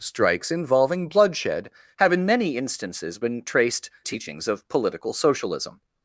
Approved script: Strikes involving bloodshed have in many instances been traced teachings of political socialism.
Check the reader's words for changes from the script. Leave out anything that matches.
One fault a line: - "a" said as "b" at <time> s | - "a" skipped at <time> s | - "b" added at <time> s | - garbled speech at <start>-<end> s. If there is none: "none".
none